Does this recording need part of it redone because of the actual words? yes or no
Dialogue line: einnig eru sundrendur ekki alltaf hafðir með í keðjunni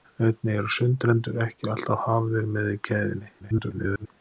yes